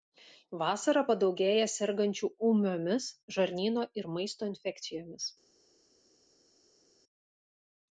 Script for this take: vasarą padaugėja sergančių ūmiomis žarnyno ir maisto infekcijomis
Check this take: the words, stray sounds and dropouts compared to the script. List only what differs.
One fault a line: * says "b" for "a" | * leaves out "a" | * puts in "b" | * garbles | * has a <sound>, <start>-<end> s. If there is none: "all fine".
all fine